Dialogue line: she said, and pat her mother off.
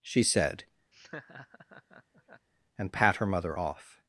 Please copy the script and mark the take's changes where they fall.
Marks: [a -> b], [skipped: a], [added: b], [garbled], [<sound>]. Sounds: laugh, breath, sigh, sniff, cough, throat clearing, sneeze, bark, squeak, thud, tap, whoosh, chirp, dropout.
she said, [laugh] and pat her mother off.